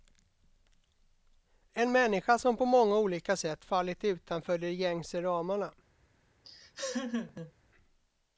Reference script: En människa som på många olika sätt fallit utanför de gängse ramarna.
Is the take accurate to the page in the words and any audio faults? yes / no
no